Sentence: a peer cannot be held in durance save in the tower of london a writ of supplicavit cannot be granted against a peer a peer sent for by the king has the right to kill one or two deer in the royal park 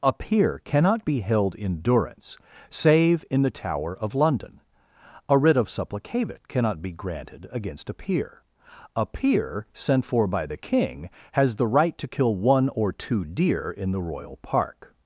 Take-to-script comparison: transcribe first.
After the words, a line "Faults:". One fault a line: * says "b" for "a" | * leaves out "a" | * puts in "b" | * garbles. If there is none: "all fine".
a peer cannot be held in durance save in the tower of london a writ of supplicavit cannot be granted against a peer a peer sent for by the king has the right to kill one or two deer in the royal park
Faults:
all fine